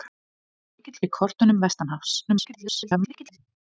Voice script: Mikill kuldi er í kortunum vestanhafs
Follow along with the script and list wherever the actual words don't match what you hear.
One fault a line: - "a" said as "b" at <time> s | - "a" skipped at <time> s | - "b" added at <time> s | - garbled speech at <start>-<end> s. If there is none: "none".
- "kuldi" skipped at 1.0 s
- garbled speech at 2.3-3.4 s